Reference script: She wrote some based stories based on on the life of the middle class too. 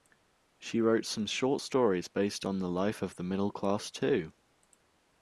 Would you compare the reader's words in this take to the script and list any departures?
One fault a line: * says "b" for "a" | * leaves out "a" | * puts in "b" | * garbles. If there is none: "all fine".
* says "short" for "based"
* leaves out "on"